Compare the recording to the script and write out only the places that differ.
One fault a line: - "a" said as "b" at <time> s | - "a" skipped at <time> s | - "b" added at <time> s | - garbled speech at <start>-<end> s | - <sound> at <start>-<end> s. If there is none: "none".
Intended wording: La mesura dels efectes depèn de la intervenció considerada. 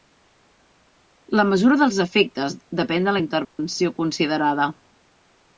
- dropout at 3.4-3.6 s